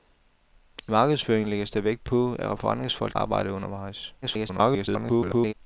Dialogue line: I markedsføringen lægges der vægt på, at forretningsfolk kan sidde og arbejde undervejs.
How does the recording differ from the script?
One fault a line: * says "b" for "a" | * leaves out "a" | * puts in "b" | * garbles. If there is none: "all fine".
* leaves out "kan sidde"
* garbles